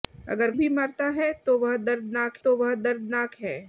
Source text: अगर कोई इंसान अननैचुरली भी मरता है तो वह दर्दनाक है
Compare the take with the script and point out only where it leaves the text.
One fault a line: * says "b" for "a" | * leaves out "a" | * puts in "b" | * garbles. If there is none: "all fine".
* says "भी मरता है तो वह दर्दनाक" for "कोई इंसान अननैचुरली भी मरता है"